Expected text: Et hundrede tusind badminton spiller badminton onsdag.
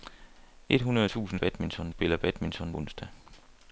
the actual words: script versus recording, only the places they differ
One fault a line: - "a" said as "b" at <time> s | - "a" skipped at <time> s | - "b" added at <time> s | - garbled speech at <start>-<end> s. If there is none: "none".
none